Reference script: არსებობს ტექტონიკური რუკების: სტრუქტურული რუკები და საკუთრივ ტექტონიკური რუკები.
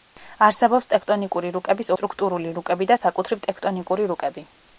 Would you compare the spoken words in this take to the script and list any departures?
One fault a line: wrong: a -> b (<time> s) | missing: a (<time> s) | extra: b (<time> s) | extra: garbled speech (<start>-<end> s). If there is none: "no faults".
no faults